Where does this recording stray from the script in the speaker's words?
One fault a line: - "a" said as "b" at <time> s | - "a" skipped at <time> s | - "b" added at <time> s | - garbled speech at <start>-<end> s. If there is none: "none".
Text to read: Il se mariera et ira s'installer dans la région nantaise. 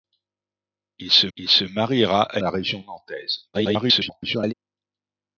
- "il se" added at 1.3 s
- "ira s'installer dans" skipped at 2.4 s
- garbled speech at 3.5-4.5 s